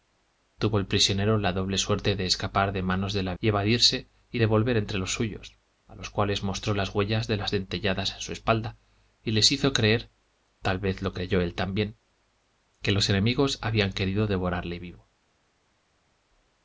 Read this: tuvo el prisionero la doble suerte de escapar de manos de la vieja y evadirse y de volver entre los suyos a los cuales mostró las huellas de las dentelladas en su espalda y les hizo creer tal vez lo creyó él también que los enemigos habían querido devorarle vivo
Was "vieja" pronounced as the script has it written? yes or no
no